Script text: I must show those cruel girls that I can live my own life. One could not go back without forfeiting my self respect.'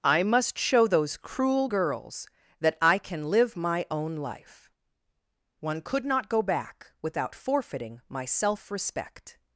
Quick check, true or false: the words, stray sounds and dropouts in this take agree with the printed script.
true